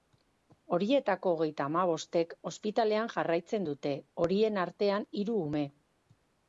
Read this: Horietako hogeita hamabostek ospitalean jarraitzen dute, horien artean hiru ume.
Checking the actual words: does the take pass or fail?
pass